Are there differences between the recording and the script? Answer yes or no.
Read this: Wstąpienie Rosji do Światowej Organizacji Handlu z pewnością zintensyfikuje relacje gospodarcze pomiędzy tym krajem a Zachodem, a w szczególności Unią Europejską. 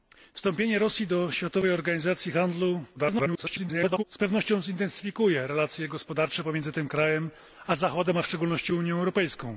yes